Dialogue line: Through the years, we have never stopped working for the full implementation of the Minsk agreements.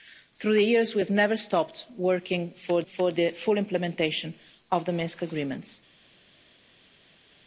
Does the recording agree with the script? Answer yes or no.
no